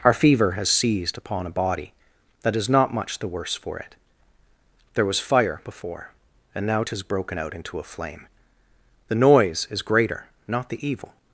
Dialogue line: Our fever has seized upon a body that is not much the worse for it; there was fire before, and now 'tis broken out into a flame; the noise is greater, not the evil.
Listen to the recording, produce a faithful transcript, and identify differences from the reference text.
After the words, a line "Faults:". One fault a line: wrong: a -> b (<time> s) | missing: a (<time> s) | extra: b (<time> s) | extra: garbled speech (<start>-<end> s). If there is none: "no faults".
Our fever has seized upon a body that is not much the worse for it; there was fire before, and now 'tis broken out into a flame; the noise is greater, not the evil.
Faults:
no faults